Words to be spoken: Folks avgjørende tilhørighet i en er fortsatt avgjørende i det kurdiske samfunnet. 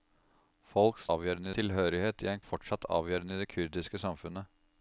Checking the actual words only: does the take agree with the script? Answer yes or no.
yes